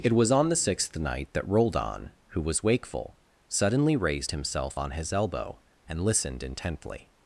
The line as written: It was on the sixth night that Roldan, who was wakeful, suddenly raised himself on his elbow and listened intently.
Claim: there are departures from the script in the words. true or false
false